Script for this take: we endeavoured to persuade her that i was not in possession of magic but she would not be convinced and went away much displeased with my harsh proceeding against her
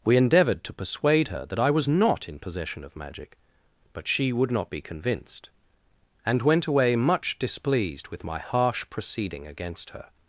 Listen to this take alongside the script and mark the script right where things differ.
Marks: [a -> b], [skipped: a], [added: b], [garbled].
we endeavoured to persuade her that i was not in possession of magic but she would not be convinced and went away much displeased with my harsh proceeding against her